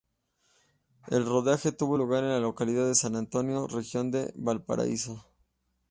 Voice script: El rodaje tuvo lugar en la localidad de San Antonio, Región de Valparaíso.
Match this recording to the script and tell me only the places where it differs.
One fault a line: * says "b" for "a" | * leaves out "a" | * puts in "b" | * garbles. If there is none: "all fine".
all fine